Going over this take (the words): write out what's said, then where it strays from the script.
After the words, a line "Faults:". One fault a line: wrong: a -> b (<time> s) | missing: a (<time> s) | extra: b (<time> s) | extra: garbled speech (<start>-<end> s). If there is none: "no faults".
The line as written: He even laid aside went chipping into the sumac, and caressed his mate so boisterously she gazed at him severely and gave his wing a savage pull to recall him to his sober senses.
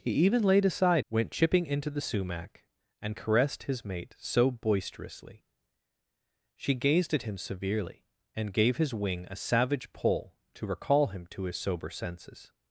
He even laid aside went chipping into the sumac, and caressed his mate so boisterously she gazed at him severely and gave his wing a savage pull to recall him to his sober senses.
Faults:
no faults